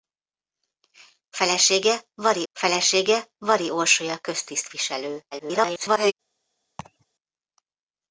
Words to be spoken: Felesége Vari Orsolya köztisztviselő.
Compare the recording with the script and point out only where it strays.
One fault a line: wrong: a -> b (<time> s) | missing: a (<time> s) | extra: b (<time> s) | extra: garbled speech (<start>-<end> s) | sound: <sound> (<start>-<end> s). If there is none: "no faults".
extra: felesége Vari (2.5 s)
extra: garbled speech (5.3-6.1 s)
sound: laugh (6.8-7.1 s)